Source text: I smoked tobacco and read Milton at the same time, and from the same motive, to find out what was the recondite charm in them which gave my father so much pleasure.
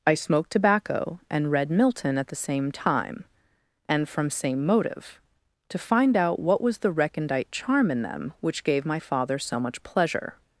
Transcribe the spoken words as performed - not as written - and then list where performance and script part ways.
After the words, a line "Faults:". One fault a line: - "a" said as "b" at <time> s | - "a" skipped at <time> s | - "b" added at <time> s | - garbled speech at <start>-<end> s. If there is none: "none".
I smoked tobacco and read Milton at the same time, and from same motive, to find out what was the recondite charm in them which gave my father so much pleasure.
Faults:
- "the" skipped at 4.3 s